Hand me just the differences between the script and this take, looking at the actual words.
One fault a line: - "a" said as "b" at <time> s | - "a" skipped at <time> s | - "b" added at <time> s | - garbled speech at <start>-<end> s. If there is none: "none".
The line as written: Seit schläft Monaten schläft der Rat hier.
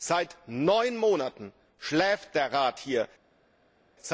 - "schläft" said as "neun" at 0.5 s